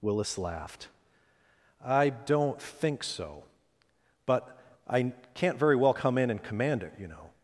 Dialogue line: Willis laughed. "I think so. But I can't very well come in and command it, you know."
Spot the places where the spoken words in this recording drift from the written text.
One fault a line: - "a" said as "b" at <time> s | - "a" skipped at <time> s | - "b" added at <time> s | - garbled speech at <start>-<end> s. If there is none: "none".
- "don't" added at 2.1 s